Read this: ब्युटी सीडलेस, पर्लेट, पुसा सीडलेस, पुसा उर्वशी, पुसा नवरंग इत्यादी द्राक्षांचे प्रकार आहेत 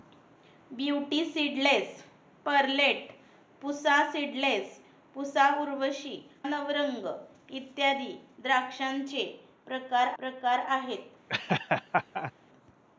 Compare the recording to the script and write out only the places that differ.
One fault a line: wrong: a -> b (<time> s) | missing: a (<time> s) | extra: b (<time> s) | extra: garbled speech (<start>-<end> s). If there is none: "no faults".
missing: पुसा (6.2 s)
extra: प्रकार (10.2 s)